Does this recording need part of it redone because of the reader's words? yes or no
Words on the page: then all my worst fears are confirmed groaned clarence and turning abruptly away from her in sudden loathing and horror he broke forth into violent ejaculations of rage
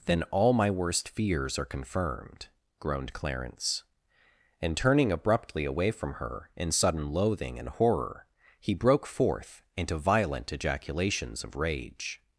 no